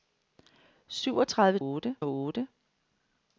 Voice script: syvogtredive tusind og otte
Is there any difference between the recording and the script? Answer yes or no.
yes